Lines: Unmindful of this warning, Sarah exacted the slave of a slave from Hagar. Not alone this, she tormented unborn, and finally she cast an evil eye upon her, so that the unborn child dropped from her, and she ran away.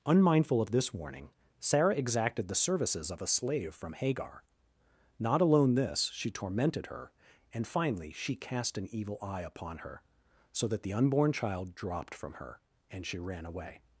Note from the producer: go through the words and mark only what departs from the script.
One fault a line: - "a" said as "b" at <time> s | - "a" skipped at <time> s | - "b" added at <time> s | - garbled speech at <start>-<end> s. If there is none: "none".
- "slave" said as "services" at 2.5 s
- "unborn" said as "her" at 6.9 s